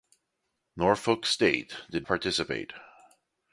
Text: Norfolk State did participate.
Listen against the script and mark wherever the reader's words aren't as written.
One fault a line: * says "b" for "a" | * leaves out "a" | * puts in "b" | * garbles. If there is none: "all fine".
all fine